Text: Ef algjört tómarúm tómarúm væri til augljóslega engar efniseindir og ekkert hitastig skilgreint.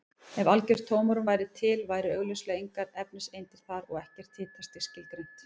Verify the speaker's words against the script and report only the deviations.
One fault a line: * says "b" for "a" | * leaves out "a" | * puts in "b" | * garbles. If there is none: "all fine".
* leaves out "tómarúm"
* puts in "væru"
* puts in "þar"